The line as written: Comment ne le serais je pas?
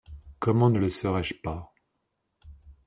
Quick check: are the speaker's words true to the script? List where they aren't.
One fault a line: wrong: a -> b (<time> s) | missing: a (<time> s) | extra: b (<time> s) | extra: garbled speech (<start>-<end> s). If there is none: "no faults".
no faults